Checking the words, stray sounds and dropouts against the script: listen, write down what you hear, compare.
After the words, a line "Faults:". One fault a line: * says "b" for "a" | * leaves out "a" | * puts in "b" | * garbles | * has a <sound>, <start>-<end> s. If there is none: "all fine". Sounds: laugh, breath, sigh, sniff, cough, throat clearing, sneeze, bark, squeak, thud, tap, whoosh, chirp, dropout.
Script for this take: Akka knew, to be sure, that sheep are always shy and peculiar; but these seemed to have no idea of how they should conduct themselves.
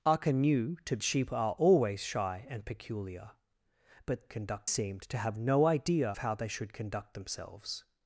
Akka knew, to sheep are always shy and peculiar; but conduct seemed to have no idea how they should conduct themselves.
Faults:
* leaves out "be sure that"
* says "conduct" for "these"
* leaves out "of"